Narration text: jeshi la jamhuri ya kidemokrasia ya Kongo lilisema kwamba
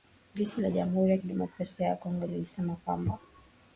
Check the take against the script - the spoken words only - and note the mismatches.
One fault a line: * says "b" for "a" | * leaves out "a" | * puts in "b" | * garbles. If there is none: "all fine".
all fine